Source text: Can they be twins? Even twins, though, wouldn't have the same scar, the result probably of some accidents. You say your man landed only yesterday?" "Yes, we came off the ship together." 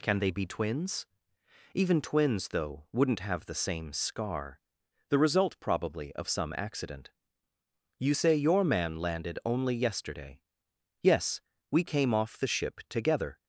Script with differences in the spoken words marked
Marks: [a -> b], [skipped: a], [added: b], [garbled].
Can they be twins? Even twins, though, wouldn't have the same scar, the result probably of some [accidents. -> accident] You say your man landed only yesterday?" "Yes, we came off the ship together."